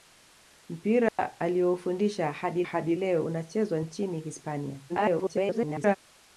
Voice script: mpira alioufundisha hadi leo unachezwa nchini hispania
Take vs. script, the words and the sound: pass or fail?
fail